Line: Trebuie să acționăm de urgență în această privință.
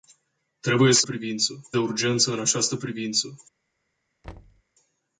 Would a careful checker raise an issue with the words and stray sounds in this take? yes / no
yes